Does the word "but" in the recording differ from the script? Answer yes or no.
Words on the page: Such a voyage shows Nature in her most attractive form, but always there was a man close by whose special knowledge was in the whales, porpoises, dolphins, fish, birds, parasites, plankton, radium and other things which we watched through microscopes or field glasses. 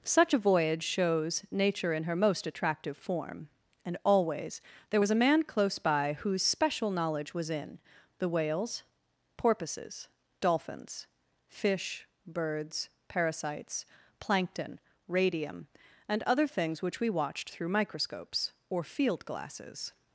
yes